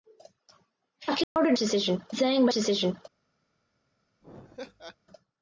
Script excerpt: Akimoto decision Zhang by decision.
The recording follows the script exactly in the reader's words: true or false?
true